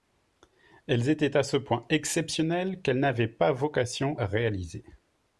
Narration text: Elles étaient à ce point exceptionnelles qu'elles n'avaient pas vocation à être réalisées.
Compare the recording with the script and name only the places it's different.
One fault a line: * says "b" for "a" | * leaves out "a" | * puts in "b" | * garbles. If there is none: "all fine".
* leaves out "à être"